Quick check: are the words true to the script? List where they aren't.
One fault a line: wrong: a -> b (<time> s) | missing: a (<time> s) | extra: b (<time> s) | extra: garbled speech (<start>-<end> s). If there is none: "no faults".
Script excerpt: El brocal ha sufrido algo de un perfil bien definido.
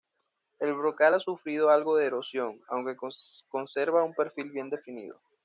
extra: erosión aunque conserva (2.1 s)